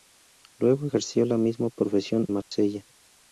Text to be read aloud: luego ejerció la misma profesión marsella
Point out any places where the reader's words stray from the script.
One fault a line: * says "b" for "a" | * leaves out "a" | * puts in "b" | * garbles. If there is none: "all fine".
all fine